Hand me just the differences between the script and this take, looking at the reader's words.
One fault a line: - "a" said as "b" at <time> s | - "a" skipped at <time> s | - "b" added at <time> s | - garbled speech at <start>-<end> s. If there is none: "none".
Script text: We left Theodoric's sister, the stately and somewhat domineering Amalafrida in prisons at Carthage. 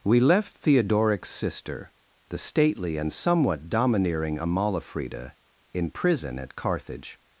- "prisons" said as "prison" at 5.9 s